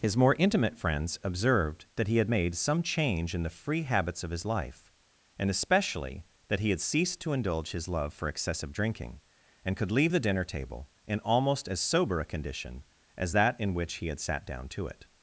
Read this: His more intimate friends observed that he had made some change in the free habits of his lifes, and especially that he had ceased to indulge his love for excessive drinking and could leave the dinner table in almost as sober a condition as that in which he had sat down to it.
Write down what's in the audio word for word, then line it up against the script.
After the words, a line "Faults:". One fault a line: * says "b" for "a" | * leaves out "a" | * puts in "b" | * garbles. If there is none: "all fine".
His more intimate friends observed that he had made some change in the free habits of his life, and especially that he had ceased to indulge his love for excessive drinking and could leave the dinner table in almost as sober a condition as that in which he had sat down to it.
Faults:
* says "life" for "lifes"